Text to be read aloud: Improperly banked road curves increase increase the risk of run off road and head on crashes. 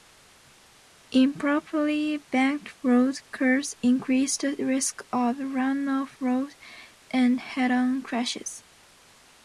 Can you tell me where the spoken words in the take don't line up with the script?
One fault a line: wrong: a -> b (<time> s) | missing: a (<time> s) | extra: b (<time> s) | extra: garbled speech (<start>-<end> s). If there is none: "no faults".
missing: increase (4.4 s)